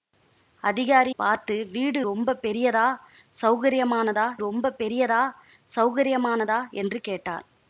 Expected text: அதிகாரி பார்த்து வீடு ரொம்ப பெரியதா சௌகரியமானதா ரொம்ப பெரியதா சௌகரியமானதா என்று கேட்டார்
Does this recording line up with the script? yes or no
yes